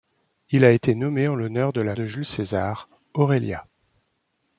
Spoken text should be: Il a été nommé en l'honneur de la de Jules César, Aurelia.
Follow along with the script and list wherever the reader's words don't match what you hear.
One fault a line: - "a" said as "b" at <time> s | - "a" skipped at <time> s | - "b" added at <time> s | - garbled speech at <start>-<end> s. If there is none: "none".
none